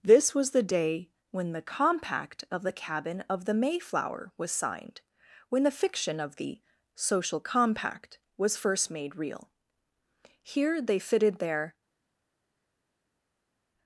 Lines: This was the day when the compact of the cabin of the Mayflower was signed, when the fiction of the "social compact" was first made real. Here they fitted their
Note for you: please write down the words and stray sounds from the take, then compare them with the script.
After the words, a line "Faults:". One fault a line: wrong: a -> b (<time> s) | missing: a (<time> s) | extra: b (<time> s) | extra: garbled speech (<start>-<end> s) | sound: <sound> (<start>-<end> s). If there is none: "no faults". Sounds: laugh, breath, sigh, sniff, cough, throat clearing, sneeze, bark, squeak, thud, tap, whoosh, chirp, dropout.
This was the day when the compact of the cabin of the Mayflower was signed, when the fiction of the "social compact" was first made real. Here they fitted their
Faults:
no faults